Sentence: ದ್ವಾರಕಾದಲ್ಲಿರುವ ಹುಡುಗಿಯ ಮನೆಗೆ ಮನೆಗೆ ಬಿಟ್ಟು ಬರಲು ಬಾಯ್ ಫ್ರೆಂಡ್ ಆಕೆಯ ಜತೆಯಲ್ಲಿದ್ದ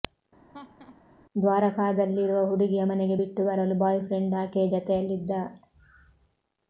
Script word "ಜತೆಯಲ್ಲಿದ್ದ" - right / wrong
right